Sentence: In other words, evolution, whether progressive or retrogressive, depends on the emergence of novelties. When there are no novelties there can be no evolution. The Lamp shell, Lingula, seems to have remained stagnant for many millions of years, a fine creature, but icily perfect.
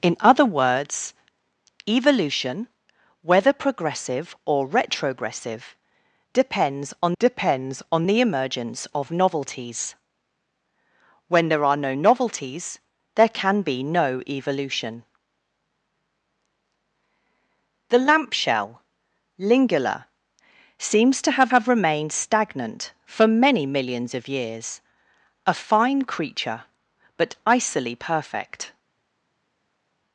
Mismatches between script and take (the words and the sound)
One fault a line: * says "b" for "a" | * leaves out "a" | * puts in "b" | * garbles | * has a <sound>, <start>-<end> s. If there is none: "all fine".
* puts in "depends on"
* puts in "have"